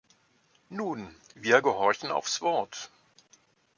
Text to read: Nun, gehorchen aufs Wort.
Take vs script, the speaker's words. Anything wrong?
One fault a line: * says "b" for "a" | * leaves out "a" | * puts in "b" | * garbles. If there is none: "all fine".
* puts in "wir"